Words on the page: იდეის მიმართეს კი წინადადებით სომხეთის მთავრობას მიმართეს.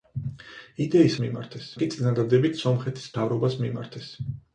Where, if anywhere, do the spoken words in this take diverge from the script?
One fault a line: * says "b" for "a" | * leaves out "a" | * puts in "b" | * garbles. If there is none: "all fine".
all fine